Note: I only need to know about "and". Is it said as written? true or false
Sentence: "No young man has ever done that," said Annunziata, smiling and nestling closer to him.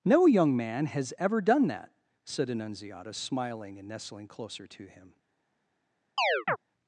true